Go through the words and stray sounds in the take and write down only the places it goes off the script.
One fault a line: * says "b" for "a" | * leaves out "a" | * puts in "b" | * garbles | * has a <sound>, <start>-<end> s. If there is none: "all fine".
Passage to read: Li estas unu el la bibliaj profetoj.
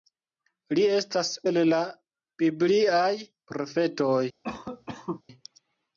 * leaves out "unu"
* has a cough, 4.4-5.2 s